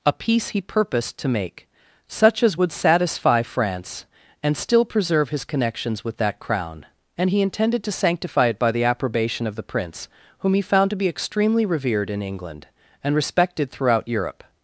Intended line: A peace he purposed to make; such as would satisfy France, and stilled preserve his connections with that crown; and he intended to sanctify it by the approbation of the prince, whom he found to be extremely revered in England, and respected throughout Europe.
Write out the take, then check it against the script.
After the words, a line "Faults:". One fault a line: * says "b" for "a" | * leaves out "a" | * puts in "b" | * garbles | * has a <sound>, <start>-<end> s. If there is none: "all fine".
A peace he purposed to make; such as would satisfy France, and still preserve his connections with that crown; and he intended to sanctify it by the approbation of the prince, whom he found to be extremely revered in England, and respected throughout Europe.
Faults:
* says "still" for "stilled"